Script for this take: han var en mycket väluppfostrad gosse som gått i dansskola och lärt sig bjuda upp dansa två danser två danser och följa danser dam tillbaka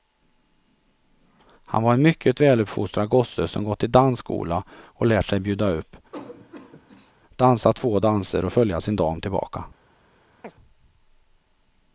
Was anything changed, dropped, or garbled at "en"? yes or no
no